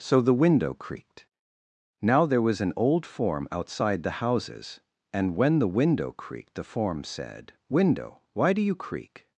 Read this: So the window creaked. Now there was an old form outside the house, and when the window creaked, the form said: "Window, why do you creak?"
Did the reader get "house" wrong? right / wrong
wrong